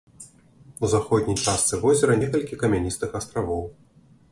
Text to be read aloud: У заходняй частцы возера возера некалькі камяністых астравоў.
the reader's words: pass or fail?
fail